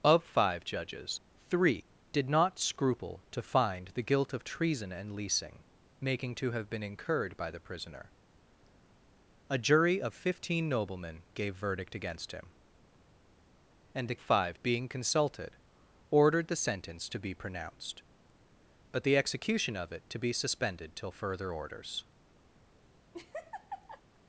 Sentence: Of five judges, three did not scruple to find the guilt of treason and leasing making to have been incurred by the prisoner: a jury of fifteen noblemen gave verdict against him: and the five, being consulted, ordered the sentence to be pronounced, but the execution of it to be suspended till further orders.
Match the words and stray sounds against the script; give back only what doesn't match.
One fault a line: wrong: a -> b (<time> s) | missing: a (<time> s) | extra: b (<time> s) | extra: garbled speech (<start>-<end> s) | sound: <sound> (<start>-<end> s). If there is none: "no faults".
sound: laugh (23.1-24.0 s)